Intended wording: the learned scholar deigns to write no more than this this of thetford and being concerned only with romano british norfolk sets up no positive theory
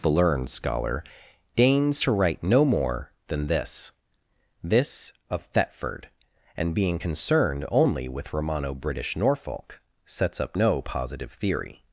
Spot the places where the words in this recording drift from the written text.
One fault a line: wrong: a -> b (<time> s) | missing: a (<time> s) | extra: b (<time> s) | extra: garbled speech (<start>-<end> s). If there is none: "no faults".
no faults